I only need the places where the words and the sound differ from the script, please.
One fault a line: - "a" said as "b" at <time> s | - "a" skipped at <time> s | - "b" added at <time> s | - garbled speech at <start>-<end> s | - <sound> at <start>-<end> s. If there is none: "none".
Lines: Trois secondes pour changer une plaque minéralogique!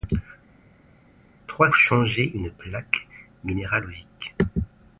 - "secondes pour" skipped at 1.7 s